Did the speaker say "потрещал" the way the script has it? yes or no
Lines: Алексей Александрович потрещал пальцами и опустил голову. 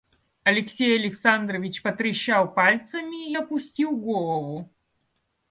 yes